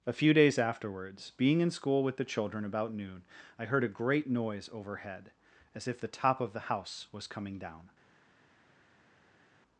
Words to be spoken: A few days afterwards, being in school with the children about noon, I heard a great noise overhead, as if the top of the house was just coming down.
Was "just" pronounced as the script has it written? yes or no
no